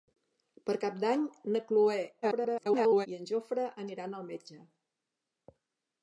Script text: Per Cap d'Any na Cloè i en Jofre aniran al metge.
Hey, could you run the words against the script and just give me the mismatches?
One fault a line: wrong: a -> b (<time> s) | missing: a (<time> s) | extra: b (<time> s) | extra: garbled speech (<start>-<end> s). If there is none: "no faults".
extra: garbled speech (2.2-3.1 s)